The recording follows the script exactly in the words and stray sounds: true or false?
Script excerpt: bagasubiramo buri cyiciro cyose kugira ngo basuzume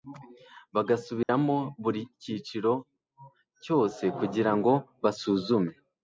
false